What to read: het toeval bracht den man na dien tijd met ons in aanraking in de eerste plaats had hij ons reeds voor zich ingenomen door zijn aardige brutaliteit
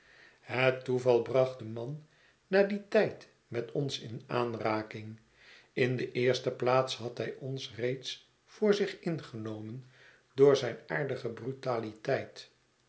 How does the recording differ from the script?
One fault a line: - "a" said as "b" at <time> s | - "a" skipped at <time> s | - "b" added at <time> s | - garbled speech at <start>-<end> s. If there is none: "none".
none